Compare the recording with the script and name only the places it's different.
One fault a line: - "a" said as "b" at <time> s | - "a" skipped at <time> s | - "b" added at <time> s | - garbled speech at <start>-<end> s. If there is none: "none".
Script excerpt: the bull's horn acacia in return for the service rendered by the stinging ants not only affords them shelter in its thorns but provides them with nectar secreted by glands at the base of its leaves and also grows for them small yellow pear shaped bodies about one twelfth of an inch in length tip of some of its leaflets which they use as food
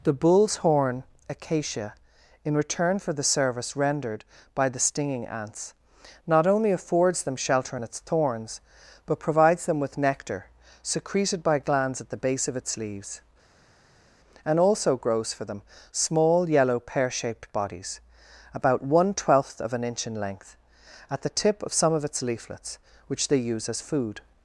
- "at the" added at 21.1 s